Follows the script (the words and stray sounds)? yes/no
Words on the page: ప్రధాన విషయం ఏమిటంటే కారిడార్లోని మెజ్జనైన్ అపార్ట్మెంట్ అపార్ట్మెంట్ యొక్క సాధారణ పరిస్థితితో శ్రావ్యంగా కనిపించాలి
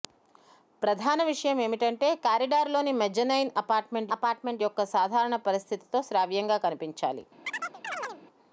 no